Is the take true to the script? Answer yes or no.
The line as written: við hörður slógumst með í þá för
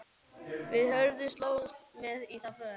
yes